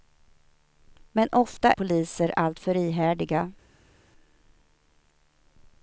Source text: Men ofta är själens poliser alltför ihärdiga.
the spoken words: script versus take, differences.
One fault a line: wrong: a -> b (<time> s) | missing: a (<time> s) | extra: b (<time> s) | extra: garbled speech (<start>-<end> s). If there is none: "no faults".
missing: är själens (1.7 s)